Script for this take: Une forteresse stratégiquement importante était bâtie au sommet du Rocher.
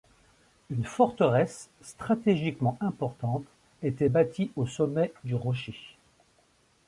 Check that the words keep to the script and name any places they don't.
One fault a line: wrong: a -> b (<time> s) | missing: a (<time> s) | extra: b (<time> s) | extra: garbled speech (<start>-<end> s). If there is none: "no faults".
no faults